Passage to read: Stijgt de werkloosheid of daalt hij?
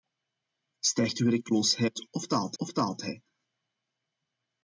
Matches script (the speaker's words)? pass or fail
fail